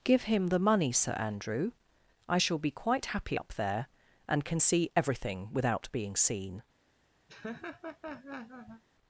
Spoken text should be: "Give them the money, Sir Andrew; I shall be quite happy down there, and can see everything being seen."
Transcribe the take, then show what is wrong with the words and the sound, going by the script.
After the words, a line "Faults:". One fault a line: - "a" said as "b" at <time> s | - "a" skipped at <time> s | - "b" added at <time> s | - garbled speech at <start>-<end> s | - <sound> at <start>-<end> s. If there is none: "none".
"Give him the money, Sir Andrew; I shall be quite happy up there, and can see everything without being seen."
Faults:
- "them" said as "him" at 0.2 s
- "down" said as "up" at 3.3 s
- "without" added at 5.5 s
- laugh at 7.3-8.8 s